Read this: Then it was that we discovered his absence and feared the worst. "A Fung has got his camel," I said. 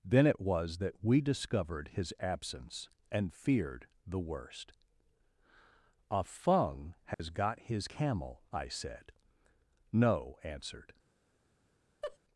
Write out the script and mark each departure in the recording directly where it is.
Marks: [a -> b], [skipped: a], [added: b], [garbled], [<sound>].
Then it was that we discovered his absence and feared the worst. "A Fung has [dropout] got his camel," I said. [added: No answered] [laugh]